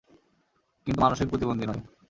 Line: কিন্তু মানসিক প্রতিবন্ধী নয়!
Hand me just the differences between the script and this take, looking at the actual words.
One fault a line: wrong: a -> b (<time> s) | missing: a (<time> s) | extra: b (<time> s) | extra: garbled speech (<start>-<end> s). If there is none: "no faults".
no faults